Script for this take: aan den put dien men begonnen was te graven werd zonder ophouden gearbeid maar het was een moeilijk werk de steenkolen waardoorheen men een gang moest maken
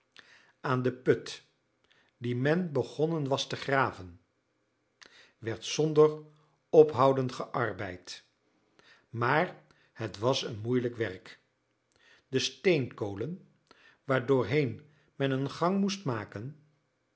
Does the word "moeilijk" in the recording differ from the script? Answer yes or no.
no